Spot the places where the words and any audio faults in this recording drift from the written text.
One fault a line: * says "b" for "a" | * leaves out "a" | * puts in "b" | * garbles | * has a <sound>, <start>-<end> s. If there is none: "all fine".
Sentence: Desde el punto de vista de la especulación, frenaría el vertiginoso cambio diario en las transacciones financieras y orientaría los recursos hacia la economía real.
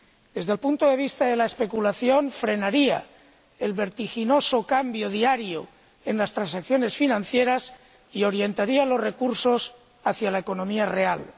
all fine